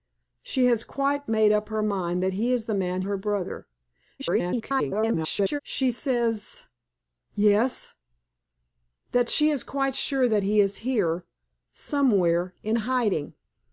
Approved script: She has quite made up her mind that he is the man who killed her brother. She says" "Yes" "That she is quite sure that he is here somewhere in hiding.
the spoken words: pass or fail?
fail